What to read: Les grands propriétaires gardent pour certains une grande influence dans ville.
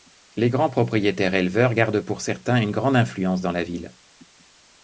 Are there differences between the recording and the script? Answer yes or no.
yes